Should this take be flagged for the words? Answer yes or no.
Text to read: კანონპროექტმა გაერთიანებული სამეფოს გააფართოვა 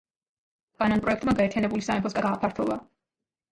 no